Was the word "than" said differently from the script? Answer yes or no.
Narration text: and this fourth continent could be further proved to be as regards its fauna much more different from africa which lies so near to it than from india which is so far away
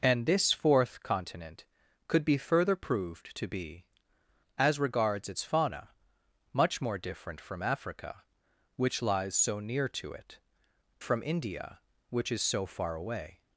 yes